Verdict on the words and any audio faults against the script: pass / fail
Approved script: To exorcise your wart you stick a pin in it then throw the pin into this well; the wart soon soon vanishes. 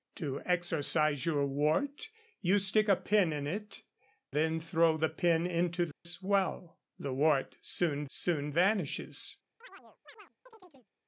fail